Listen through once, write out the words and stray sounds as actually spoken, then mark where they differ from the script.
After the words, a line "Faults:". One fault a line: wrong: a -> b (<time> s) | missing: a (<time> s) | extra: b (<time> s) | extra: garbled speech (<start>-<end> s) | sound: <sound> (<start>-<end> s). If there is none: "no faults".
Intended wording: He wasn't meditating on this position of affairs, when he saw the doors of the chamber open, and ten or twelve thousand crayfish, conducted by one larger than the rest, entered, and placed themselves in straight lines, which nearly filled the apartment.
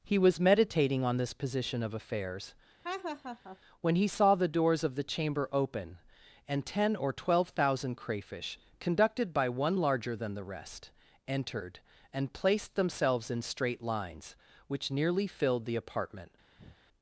He was meditating on this position of affairs, when he saw the doors of the chamber open, and ten or twelve thousand crayfish, conducted by one larger than the rest, entered, and placed themselves in straight lines, which nearly filled the apartment.
Faults:
wrong: wasn't -> was (0.2 s)
sound: laugh (2.8-3.6 s)
sound: breath (16.6-16.8 s)